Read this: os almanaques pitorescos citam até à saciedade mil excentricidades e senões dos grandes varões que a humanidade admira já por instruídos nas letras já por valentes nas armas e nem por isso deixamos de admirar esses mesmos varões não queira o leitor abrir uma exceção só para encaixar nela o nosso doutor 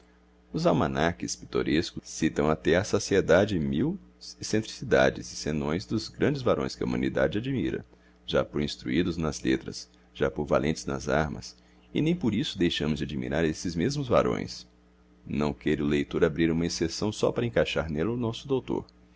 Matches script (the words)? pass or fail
pass